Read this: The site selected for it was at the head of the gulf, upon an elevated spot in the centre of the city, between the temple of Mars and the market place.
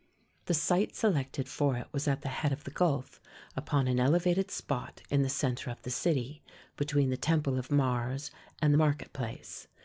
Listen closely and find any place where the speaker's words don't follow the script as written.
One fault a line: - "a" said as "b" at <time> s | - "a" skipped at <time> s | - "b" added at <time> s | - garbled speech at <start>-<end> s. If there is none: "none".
none